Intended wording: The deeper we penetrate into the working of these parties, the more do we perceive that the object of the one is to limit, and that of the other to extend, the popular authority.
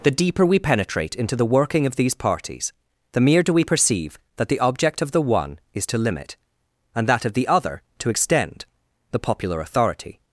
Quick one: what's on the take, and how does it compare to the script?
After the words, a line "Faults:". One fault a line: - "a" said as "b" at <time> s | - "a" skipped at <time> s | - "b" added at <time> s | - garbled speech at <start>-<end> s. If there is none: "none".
The deeper we penetrate into the working of these parties, the mere do we perceive that the object of the one is to limit, and that of the other to extend, the popular authority.
Faults:
- "more" said as "mere" at 3.2 s